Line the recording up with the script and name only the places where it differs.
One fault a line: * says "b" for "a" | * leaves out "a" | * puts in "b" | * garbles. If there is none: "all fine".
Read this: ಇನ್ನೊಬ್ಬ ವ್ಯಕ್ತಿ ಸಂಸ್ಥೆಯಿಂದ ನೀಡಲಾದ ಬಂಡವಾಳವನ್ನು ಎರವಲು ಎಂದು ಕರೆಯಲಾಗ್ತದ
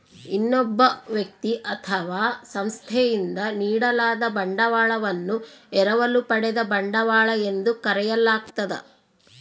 * puts in "ಅಥವಾ"
* puts in "ಪಡೆದ ಬಂಡವಾಳ"